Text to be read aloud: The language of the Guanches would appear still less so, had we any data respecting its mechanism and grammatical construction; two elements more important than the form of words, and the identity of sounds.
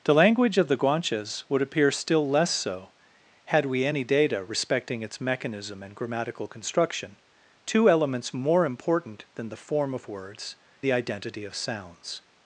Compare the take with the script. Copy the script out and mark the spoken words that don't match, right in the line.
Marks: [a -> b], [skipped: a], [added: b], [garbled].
The language of the Guanches would appear still less so, had we any data respecting its mechanism and grammatical construction; two elements more important than the form of words, [skipped: and] the identity of sounds.